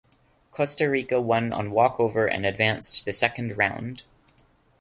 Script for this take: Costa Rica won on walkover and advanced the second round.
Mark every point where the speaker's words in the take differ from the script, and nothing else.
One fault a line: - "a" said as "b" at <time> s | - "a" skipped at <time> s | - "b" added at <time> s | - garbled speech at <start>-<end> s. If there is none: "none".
none